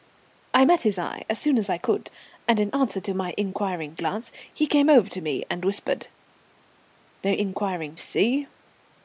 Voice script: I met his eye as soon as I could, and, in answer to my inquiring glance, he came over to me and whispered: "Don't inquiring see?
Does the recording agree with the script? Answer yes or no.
yes